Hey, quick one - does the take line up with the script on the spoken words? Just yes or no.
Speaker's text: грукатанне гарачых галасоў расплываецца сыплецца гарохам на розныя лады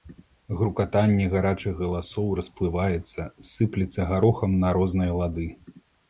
yes